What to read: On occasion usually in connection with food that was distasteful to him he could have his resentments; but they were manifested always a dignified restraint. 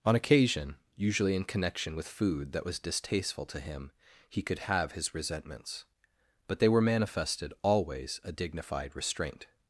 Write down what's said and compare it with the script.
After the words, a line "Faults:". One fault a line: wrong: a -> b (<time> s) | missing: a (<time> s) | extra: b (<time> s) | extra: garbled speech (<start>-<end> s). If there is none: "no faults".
On occasion usually in connection with food that was distasteful to him he could have his resentments; but they were manifested always a dignified restraint.
Faults:
no faults